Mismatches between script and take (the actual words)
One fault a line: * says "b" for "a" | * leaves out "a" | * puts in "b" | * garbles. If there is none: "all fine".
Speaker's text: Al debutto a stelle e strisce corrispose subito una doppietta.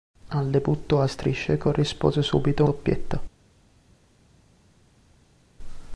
* leaves out "stelle"
* leaves out "una"